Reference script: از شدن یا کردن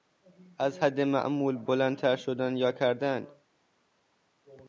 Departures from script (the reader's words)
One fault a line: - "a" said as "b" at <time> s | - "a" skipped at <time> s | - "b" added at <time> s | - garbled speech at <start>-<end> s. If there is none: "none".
- "حد معمول بلندتر" added at 0.8 s